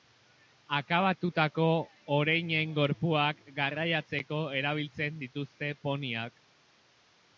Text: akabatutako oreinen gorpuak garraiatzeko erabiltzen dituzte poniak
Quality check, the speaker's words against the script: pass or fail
pass